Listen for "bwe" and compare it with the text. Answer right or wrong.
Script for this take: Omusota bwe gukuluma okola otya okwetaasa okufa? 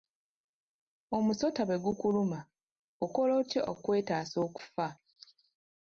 right